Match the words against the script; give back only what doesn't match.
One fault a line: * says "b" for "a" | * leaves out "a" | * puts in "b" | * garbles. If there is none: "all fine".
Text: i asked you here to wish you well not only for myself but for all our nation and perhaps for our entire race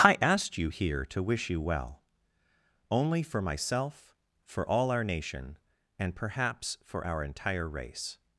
* leaves out "not"
* leaves out "but"